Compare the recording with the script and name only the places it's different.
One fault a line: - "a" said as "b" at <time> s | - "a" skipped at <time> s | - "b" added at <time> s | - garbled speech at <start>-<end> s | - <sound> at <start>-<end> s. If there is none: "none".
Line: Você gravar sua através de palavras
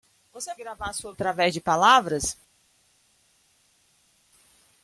none